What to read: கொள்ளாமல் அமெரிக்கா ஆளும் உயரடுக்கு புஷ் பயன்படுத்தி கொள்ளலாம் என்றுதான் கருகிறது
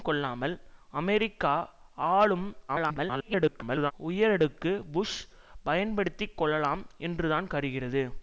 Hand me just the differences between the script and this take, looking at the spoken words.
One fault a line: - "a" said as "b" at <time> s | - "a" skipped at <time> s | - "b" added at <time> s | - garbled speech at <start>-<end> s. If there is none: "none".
- garbled speech at 2.7-3.9 s